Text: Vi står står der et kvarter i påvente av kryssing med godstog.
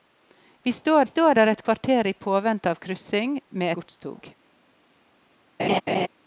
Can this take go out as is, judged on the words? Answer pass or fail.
pass